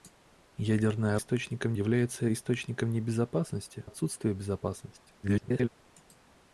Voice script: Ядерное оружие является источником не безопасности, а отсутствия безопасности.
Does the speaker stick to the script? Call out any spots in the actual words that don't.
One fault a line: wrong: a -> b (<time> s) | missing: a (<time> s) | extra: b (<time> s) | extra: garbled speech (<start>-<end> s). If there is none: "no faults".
wrong: оружие -> источником (1.1 s)
missing: а (3.9 s)
extra: garbled speech (5.2-5.7 s)